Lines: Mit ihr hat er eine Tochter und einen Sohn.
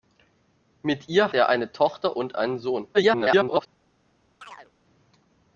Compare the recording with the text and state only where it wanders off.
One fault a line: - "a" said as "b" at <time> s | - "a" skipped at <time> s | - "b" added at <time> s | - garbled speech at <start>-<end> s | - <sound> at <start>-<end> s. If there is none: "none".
- "hat" skipped at 1.3 s
- garbled speech at 2.9-3.7 s
- chirp at 4.4-4.7 s